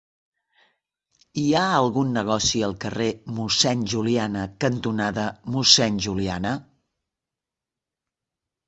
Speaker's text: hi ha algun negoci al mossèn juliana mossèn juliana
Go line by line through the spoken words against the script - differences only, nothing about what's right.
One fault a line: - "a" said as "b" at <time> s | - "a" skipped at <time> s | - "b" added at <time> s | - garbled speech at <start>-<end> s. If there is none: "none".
- "carrer" added at 2.9 s
- "cantonada" added at 4.7 s